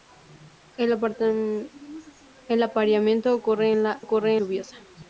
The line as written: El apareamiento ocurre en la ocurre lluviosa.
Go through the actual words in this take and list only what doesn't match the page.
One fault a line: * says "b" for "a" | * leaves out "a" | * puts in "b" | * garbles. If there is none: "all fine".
all fine